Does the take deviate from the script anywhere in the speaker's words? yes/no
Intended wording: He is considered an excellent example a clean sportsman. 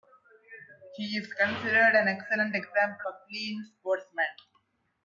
no